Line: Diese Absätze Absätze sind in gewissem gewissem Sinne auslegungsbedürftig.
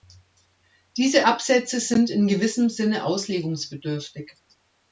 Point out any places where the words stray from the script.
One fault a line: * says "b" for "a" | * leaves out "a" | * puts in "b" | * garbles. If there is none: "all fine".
* leaves out "Absätze"
* leaves out "gewissem"